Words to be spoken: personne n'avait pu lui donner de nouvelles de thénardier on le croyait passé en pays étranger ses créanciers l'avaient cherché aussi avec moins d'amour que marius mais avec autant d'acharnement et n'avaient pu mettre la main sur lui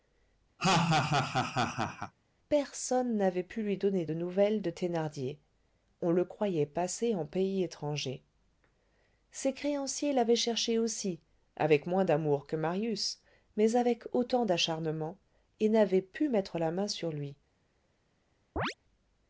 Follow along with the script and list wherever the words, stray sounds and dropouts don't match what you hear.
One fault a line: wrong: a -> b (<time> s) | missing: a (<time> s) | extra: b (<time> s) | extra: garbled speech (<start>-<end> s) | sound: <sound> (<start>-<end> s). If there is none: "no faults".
sound: laugh (0.6-2.1 s)
sound: chirp (18.6-18.7 s)